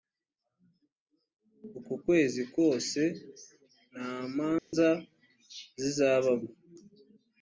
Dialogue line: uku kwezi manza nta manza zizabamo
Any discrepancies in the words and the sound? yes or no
yes